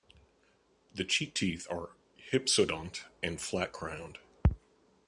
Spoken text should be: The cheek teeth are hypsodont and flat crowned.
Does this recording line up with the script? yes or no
yes